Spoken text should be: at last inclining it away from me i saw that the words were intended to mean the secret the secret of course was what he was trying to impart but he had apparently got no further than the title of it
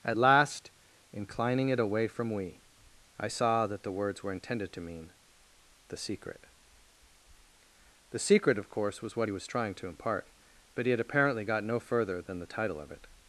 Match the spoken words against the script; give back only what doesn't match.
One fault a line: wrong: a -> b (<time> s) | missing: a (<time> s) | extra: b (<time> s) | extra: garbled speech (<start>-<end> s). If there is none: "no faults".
wrong: me -> we (2.3 s)